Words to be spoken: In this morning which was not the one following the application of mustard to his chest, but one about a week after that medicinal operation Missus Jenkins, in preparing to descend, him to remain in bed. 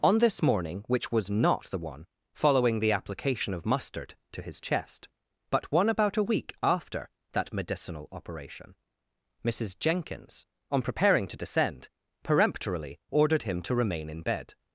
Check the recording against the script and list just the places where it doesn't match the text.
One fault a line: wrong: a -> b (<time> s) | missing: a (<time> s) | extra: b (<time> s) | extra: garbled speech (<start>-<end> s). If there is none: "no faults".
wrong: In -> On (0.0 s)
wrong: in -> on (10.7 s)
extra: peremptorily ordered (12.2 s)